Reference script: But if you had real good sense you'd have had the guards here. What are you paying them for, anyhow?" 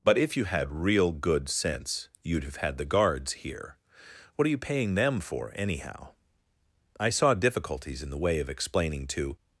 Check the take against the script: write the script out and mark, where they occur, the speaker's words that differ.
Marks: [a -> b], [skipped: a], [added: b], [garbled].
But if you had real good sense you'd have had the guards here. What are you paying them for, anyhow?" [added: I saw difficulties in the way of explaining to]